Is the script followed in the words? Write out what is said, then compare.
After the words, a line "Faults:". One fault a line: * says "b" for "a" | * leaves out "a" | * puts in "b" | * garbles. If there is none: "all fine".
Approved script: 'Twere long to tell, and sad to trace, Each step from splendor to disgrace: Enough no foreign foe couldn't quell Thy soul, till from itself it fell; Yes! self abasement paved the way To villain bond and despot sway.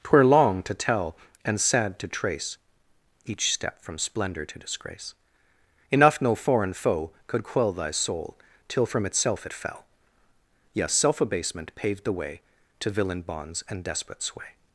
'Twere long to tell, and sad to trace, Each step from splendor to disgrace: Enough no foreign foe could quell Thy soul, till from itself it fell; Yes! self abasement paved the way To villain bonds and despot sway.
Faults:
* says "could" for "couldn't"
* says "bonds" for "bond"